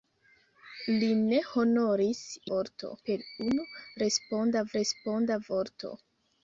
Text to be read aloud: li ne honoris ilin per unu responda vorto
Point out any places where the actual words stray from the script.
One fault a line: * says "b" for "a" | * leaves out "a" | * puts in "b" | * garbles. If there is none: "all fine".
* says "vorto" for "ilin"
* puts in "responda"